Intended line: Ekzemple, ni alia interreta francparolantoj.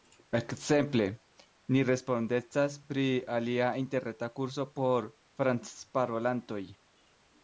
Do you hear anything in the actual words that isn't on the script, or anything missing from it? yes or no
yes